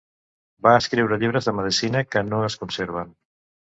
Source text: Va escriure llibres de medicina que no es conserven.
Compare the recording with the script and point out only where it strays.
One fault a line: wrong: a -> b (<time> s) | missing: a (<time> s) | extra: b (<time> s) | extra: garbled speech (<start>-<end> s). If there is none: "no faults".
no faults